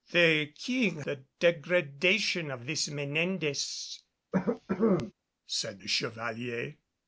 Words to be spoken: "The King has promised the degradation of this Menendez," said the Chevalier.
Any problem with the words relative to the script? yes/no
yes